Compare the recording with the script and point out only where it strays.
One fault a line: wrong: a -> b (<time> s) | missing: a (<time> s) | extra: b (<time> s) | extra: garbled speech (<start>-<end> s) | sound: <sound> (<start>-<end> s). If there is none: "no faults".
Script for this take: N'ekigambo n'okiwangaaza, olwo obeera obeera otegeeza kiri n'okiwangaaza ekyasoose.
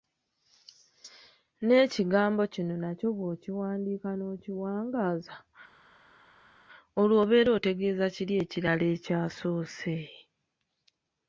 extra: kino nakyo bw'okiwandiika (2.5 s)
missing: obeera (7.5 s)
wrong: n'okiwangaaza -> ekirala (8.4 s)